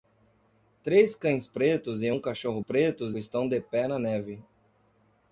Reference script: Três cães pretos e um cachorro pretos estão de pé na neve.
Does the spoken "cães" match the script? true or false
true